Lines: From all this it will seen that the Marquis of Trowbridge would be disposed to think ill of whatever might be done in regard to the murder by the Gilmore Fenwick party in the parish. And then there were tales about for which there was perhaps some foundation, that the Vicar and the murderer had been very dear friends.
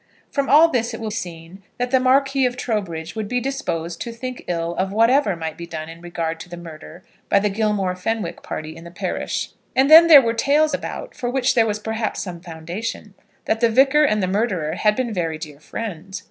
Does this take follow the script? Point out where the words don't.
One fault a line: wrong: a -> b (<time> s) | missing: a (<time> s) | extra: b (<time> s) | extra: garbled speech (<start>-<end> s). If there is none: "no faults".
no faults